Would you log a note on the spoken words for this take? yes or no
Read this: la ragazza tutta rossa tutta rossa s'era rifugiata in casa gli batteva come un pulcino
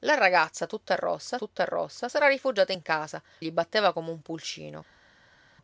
no